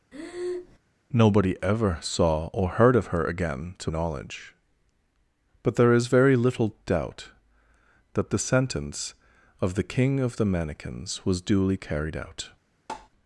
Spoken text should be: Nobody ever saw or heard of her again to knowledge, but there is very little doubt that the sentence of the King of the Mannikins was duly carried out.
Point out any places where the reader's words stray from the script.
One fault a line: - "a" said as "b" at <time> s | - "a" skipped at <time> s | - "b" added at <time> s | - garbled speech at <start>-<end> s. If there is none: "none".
none